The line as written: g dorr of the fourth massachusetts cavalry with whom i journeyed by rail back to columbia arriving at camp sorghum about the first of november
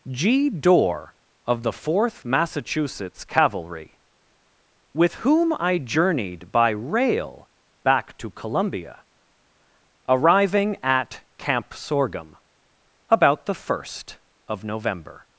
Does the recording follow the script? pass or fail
pass